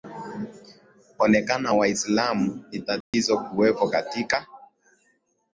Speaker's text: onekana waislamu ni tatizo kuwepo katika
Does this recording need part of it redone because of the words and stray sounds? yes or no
yes